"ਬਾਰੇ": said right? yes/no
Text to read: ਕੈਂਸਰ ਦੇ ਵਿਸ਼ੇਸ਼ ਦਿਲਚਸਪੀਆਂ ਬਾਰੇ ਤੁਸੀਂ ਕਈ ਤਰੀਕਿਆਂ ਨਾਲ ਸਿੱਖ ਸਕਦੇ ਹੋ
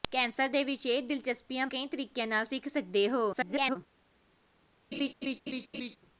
no